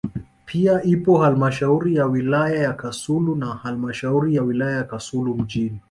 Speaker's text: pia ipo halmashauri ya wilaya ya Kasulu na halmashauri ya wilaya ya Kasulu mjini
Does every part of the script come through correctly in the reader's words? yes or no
yes